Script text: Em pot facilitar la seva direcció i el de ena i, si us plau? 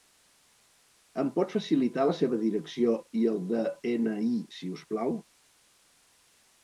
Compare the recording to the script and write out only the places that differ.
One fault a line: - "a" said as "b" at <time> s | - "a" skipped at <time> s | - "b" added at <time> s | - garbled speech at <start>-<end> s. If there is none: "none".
none